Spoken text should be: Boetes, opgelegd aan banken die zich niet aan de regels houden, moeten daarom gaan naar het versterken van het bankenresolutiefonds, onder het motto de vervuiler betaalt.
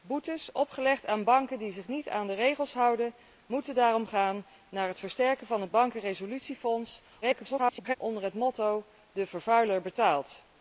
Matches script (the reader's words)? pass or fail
fail